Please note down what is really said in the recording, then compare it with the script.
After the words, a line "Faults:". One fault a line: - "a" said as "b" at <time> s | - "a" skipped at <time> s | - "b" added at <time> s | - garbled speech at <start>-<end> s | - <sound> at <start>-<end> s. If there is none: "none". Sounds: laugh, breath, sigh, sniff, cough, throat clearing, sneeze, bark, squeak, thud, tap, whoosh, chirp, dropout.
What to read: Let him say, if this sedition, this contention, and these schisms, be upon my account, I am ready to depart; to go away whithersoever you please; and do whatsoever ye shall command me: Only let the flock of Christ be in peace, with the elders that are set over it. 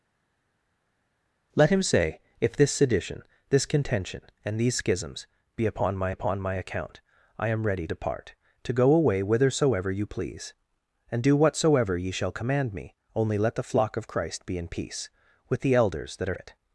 Let him say, if this sedition, this contention, and these schisms, be upon my upon my account, I am ready depart; to go away whithersoever you please; and do whatsoever ye shall command me: Only let the flock of Christ be in peace, with the elders that are it.
Faults:
- "upon my" added at 6.1 s
- "to" skipped at 7.9 s
- "set over" skipped at 16.4 s